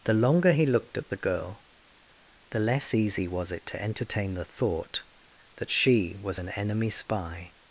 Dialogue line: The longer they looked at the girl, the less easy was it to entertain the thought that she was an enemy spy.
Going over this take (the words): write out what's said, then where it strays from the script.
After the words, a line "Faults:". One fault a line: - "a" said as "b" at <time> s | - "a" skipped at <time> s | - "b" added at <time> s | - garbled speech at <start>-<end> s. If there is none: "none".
The longer he looked at the girl, the less easy was it to entertain the thought that she was an enemy spy.
Faults:
- "they" said as "he" at 0.5 s